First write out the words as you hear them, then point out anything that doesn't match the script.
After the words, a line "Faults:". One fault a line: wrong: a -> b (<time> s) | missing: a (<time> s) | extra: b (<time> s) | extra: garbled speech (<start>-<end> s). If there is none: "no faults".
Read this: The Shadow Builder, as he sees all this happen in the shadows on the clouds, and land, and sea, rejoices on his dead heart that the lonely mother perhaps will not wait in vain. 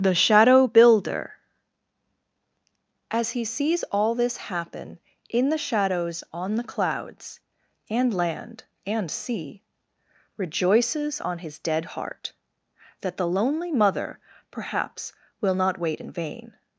The Shadow Builder, as he sees all this happen in the shadows on the clouds, and land, and sea, rejoices on his dead heart that the lonely mother perhaps will not wait in vain.
Faults:
no faults